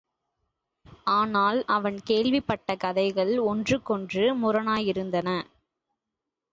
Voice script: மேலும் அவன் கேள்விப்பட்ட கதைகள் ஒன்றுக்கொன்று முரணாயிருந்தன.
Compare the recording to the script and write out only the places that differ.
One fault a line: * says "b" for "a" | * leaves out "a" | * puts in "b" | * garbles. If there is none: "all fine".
* says "ஆனால்" for "மேலும்"